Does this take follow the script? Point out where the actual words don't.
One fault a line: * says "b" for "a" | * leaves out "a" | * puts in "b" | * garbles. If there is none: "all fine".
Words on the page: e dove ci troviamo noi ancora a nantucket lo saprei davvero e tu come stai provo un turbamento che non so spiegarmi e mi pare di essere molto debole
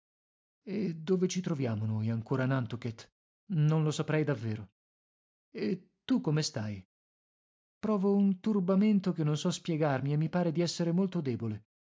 * puts in "non"